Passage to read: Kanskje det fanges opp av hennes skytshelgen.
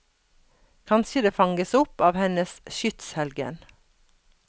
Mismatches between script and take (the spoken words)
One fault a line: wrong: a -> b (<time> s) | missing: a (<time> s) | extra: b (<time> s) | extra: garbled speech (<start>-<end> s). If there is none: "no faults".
no faults